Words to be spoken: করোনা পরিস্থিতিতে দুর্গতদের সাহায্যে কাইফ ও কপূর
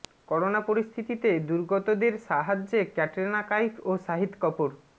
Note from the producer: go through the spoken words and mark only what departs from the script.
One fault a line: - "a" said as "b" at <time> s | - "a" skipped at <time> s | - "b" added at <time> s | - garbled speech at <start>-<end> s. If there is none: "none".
- "ক্যাটরিনা" added at 3.0 s
- "শাহিদ" added at 4.0 s